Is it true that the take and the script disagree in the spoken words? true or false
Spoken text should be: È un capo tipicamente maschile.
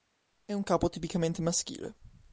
false